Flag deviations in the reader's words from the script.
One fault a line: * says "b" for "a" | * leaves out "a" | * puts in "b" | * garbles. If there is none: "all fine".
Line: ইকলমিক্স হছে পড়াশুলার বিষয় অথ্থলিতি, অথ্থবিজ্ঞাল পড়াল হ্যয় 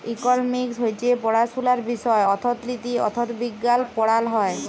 all fine